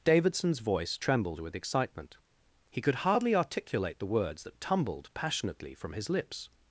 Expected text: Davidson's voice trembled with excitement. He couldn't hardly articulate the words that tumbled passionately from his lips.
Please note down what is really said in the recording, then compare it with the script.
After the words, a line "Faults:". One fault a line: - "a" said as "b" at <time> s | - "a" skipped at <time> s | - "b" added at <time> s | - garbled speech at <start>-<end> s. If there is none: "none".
Davidson's voice trembled with excitement. He could hardly articulate the words that tumbled passionately from his lips.
Faults:
- "couldn't" said as "could" at 2.8 s